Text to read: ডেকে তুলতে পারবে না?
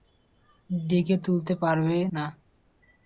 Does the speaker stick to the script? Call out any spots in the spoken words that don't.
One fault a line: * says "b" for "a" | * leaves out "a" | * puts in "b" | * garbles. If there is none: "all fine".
all fine